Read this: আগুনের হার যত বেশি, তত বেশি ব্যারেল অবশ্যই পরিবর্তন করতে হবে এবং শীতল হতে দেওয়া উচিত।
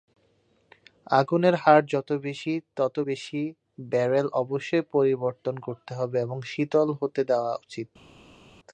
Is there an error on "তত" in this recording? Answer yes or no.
no